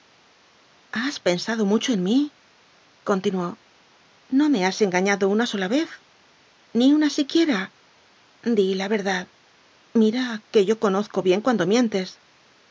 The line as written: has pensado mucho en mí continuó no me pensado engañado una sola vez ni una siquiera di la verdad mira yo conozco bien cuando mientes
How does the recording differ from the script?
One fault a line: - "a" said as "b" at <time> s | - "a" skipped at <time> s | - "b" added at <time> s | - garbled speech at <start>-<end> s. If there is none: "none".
- "pensado" said as "has" at 4.7 s
- "que" added at 10.5 s